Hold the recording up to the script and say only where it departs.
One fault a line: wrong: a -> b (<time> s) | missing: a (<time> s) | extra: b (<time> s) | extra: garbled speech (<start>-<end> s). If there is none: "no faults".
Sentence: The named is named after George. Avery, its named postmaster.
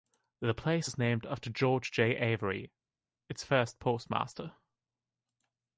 wrong: named -> place (0.6 s)
extra: J (1.9 s)
wrong: named -> first (3.4 s)